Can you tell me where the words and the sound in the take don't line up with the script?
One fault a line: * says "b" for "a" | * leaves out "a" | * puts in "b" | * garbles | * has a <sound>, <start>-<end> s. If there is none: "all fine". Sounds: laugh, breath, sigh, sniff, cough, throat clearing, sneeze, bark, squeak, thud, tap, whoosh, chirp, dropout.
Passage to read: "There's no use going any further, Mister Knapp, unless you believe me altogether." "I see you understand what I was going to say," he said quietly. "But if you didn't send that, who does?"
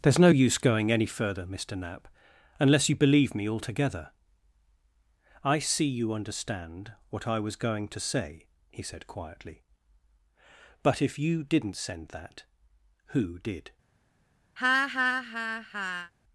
* says "did" for "does"
* has a laugh, 14.6-16.1 s